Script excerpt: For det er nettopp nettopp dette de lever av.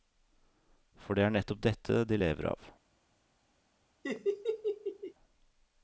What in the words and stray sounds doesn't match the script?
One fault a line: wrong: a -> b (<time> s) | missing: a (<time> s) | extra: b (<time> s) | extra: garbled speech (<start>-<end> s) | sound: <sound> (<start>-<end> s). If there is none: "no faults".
missing: nettopp (1.6 s)
sound: laugh (4.0-5.1 s)